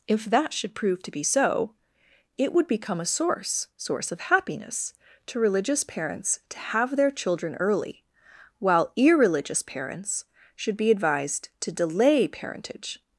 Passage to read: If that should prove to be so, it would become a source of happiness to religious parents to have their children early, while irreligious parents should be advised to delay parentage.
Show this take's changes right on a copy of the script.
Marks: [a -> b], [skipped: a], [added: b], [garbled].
If that should prove to be so, it would become a source [added: source] of happiness to religious parents to have their children early, while irreligious parents should be advised to delay parentage.